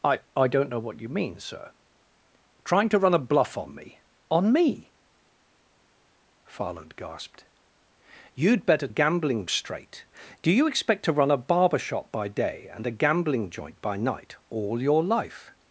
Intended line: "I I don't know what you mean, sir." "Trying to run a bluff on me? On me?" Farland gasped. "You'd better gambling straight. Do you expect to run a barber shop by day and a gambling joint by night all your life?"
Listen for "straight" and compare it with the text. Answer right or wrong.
right